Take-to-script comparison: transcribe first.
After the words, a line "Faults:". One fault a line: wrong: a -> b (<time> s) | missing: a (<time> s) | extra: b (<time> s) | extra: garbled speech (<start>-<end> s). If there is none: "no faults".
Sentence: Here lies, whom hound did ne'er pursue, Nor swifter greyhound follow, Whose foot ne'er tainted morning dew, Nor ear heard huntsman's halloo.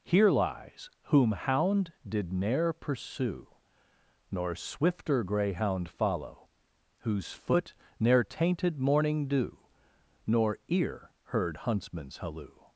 Here lies, whom hound did ne'er pursue, Nor swifter greyhound follow, Whose foot ne'er tainted morning dew, Nor ear heard huntsman's halloo.
Faults:
no faults